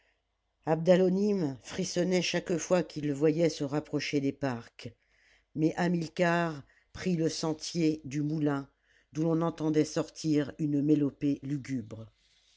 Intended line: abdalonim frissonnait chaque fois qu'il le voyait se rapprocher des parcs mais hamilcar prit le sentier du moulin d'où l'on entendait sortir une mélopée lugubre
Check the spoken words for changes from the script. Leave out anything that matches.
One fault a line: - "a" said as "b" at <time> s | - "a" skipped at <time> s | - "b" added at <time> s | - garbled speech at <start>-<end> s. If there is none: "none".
none